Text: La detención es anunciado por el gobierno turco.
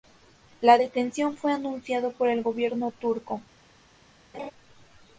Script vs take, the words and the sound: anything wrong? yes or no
yes